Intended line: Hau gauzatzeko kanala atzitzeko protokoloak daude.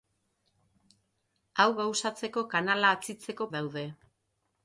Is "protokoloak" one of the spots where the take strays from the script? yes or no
yes